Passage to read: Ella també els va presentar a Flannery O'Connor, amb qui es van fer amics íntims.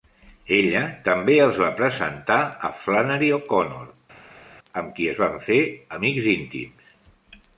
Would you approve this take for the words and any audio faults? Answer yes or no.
yes